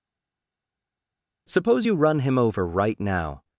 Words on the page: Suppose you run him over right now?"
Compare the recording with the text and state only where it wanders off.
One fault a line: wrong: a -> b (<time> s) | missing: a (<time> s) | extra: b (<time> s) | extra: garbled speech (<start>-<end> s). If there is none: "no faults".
no faults